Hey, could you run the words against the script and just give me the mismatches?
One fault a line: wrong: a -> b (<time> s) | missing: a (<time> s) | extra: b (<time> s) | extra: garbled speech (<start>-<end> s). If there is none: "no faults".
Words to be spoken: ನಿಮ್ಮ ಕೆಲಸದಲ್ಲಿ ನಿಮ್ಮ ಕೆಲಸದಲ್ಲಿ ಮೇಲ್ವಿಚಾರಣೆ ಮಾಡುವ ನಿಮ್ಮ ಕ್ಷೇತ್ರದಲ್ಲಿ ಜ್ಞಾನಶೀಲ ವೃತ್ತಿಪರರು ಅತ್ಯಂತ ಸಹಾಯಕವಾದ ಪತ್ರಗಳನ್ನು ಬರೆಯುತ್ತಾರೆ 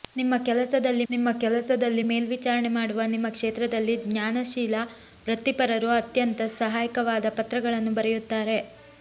no faults